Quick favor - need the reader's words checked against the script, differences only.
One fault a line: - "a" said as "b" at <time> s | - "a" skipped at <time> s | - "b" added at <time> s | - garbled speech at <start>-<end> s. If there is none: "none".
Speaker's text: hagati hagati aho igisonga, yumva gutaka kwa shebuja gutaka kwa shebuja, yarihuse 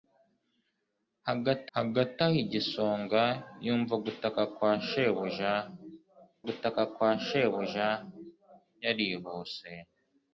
none